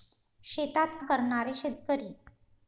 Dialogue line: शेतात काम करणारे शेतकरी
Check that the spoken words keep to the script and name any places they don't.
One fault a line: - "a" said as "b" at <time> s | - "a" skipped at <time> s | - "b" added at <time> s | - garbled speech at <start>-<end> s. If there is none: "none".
- "काम" skipped at 1.0 s